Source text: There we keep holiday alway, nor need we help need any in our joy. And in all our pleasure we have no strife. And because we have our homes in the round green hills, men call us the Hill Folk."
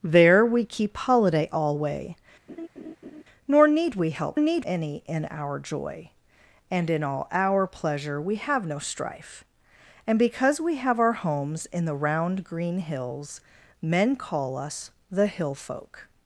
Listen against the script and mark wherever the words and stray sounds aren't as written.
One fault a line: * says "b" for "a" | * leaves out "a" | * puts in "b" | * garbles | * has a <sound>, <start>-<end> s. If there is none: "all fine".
* has a laugh, 2.5-3.2 s